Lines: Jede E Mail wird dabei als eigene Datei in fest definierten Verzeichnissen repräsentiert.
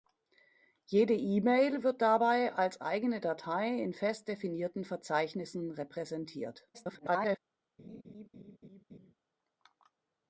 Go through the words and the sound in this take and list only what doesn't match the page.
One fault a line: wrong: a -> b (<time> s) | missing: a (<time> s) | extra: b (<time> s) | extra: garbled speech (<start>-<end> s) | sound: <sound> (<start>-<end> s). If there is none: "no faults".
extra: garbled speech (6.7-7.4 s)
sound: laugh (7.8-9.1 s)